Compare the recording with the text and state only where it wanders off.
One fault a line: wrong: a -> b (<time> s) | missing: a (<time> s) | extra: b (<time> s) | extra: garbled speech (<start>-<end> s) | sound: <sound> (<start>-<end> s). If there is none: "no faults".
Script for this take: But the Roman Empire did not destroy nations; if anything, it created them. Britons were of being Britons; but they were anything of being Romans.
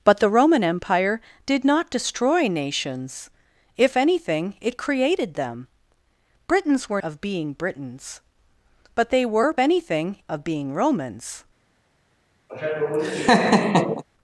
sound: laugh (12.5-14.0 s)